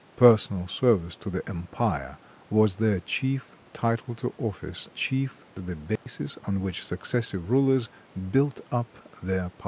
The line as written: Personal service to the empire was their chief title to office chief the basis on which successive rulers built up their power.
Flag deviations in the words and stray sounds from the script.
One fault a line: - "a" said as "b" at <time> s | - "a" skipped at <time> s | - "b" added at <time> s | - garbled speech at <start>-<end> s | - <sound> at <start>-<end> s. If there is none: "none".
- dropout at 6.0-6.1 s